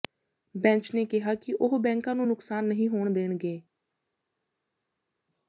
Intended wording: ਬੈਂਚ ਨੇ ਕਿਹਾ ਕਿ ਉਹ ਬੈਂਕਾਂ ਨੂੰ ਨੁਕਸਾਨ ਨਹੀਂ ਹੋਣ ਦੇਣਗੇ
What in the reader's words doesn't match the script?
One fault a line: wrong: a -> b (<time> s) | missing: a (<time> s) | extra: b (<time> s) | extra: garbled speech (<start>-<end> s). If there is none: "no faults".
no faults